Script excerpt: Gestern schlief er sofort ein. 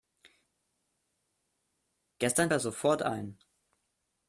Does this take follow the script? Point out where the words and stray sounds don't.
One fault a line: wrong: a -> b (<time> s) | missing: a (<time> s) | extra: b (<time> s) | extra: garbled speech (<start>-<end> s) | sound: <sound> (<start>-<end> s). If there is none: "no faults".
missing: schlief (2.5 s)